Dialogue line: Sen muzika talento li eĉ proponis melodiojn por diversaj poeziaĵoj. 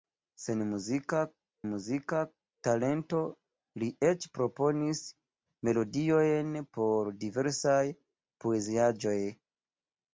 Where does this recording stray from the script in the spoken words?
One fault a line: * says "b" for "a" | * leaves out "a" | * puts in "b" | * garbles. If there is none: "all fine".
* puts in "muzika"